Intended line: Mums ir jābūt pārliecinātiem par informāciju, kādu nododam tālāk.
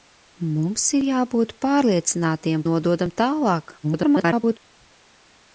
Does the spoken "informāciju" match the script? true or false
false